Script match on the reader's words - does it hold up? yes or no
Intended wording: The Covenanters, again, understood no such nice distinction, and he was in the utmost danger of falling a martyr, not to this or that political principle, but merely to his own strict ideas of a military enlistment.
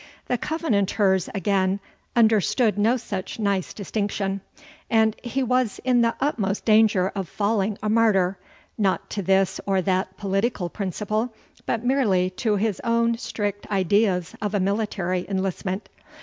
yes